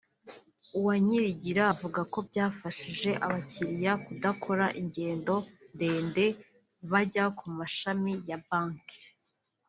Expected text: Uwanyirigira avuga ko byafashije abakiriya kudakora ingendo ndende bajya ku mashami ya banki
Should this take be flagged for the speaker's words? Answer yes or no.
no